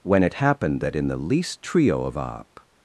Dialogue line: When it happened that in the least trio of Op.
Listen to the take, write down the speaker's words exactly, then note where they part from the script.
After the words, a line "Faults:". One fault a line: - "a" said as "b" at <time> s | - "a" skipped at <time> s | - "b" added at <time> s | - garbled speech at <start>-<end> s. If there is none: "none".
When it happened that in the least trio of Op.
Faults:
none